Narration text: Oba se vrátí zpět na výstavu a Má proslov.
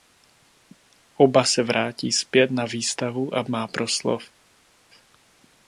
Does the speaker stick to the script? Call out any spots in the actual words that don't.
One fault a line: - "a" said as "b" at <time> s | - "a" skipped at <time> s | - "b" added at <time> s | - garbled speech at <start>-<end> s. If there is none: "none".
none